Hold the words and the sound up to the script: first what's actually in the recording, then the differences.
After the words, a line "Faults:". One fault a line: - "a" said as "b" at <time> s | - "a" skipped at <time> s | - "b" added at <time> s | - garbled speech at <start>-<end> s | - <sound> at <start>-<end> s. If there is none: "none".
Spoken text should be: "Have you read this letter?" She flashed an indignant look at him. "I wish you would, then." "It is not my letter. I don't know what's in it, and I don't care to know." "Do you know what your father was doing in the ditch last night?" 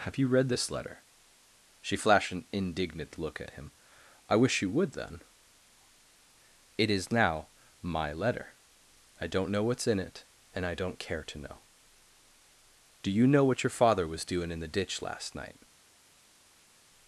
"Have you read this letter?" She flashed an indignant look at him. "I wish you would, then." "It is now my letter. I don't know what's in it, and I don't care to know." "Do you know what your father was doing in the ditch last night?"
Faults:
- "not" said as "now" at 7.1 s